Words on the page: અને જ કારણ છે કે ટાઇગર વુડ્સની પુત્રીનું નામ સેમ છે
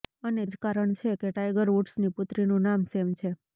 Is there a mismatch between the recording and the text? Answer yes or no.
no